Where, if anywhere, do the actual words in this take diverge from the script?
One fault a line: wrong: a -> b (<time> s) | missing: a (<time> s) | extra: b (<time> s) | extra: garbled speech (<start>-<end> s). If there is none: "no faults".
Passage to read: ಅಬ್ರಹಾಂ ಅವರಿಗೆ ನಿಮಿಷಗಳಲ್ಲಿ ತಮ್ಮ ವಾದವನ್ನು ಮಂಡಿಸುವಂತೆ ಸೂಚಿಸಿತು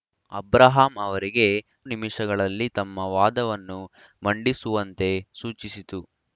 no faults